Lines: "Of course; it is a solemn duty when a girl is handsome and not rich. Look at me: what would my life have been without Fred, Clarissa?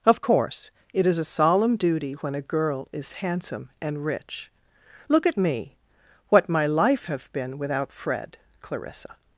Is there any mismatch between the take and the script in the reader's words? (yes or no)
yes